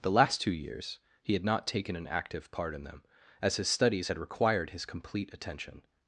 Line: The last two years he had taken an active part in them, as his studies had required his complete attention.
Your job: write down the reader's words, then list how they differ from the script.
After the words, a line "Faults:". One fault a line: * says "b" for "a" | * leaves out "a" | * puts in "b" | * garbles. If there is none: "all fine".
The last two years he had not taken an active part in them, as his studies had required his complete attention.
Faults:
* puts in "not"